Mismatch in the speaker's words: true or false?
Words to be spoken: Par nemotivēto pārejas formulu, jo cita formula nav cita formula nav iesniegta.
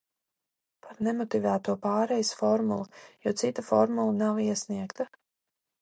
true